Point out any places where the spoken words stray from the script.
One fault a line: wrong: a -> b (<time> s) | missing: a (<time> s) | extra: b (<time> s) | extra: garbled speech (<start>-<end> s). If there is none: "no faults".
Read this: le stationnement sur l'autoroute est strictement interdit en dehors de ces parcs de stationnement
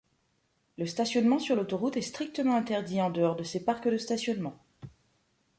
no faults